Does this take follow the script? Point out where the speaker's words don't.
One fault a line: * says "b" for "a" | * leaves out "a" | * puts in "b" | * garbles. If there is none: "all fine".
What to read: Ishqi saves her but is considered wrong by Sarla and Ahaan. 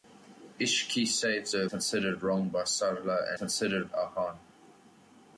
* leaves out "but is"
* says "considered" for "and"